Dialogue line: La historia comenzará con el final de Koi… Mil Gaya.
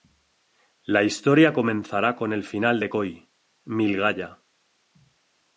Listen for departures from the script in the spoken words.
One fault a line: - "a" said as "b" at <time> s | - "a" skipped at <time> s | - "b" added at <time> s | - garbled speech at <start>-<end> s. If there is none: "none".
none